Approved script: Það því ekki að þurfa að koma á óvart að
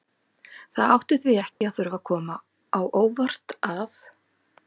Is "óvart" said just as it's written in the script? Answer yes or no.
yes